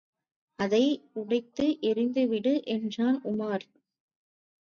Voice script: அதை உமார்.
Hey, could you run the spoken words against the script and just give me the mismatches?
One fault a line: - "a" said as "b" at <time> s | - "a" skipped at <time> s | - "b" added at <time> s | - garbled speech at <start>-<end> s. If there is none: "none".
- "உடைத்து எறிந்துவிடு என்றான்" added at 1.1 s